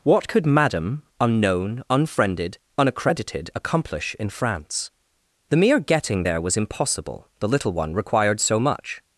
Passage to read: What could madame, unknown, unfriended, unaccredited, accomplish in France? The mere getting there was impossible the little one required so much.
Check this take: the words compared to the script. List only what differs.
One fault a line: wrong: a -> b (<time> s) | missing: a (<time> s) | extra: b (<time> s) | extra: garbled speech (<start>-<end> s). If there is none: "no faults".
no faults